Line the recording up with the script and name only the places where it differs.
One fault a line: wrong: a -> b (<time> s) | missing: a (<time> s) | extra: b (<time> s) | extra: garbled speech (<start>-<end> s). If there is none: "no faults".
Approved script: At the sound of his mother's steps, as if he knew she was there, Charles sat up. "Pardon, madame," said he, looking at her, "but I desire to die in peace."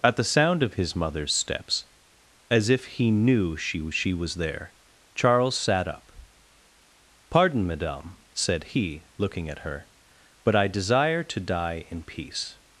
extra: she (3.9 s)